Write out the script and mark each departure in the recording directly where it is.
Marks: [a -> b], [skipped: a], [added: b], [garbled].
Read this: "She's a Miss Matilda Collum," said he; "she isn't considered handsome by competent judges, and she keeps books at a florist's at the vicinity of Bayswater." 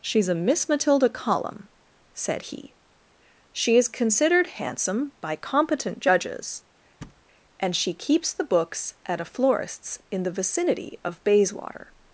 "She's a Miss Matilda Collum," said he; "she [isn't -> is] considered handsome by competent judges, and she keeps [added: the] books at a florist's [at -> in] the vicinity of Bayswater."